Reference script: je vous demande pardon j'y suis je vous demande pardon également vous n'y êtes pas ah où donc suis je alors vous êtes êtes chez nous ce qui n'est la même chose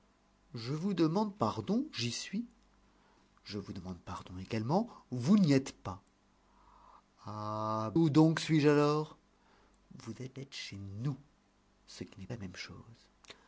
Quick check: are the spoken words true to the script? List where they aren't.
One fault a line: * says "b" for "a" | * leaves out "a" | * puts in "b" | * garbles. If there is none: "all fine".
all fine